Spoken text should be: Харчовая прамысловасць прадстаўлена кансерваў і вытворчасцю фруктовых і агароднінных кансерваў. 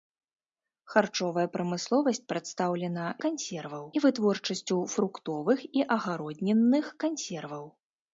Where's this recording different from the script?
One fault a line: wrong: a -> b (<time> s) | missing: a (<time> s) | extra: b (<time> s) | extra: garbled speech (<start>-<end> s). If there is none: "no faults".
no faults